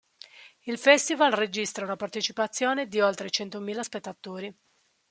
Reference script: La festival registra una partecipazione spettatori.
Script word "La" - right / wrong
wrong